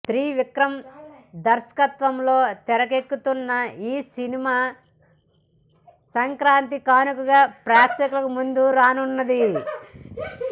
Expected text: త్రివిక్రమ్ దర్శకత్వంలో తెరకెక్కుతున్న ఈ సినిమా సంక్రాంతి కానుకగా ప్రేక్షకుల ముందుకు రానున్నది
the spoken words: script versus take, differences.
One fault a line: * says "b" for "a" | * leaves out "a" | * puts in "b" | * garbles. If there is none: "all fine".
all fine